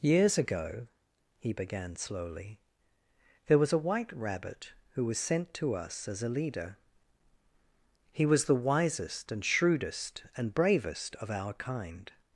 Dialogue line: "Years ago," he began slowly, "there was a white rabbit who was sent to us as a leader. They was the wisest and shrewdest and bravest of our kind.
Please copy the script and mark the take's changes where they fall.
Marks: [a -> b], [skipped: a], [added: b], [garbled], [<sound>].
"Years ago," he began slowly, "there was a white rabbit who was sent to us as a leader. [They -> He] was the wisest and shrewdest and bravest of our kind.